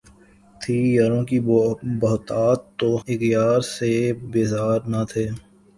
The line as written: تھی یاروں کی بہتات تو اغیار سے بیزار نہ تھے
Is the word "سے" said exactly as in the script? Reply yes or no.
yes